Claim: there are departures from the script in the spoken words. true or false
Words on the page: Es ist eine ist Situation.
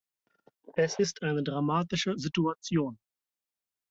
true